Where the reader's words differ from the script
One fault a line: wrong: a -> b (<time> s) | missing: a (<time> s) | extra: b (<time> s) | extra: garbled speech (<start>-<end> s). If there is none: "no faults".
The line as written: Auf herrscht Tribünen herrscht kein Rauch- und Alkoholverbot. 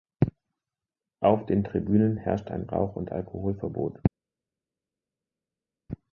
wrong: herrscht -> den (1.4 s)
wrong: kein -> ein (2.5 s)